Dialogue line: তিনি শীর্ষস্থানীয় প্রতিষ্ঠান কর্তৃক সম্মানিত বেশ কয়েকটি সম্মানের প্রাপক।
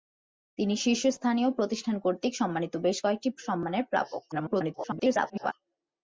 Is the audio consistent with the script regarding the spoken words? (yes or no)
no